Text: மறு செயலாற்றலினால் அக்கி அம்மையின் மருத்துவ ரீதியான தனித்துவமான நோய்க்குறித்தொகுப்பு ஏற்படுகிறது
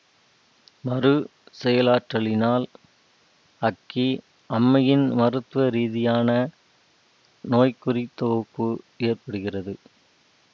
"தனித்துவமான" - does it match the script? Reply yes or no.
no